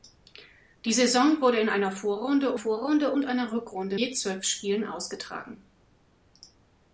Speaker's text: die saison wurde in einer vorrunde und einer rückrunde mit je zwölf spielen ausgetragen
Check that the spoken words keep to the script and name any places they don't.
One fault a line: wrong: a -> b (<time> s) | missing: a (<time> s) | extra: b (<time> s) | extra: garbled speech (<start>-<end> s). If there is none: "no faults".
extra: vorrunde (2.5 s)
missing: mit (4.0 s)